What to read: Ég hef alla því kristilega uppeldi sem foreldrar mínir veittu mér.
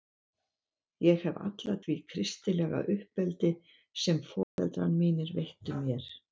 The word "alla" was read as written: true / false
true